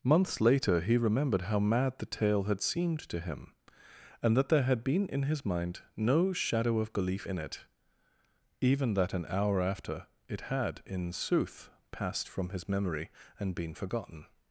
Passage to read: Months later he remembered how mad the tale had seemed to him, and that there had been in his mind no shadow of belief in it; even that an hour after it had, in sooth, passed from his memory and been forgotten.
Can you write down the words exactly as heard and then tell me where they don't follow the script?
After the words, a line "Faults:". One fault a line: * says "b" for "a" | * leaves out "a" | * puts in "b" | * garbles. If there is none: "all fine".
Months later he remembered how mad the tale had seemed to him, and that there had been in his mind no shadow of belief in it; even that an hour after it had, in sooth, passed from his memory and been forgotten.
Faults:
all fine